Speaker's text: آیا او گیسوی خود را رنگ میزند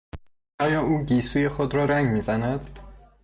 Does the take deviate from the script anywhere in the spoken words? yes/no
no